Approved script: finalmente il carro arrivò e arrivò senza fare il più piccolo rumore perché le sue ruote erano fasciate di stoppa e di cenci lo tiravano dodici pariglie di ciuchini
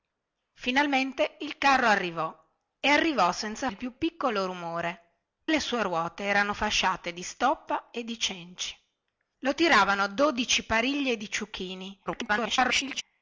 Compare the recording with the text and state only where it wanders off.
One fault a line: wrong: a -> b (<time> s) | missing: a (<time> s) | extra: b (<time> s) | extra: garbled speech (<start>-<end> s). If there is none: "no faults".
missing: fare (3.7 s)
missing: perché (5.0 s)
extra: garbled speech (12.1-13.0 s)